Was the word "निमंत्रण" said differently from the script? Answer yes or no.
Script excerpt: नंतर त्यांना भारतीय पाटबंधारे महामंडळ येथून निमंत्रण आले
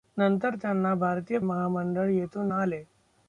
yes